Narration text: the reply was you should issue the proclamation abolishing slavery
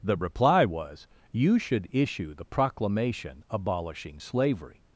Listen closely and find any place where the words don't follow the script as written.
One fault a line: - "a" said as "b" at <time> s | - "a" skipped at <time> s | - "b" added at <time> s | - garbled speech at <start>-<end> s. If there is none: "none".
none